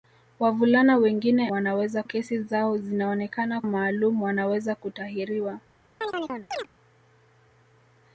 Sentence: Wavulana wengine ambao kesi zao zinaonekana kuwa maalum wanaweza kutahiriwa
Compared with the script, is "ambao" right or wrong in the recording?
wrong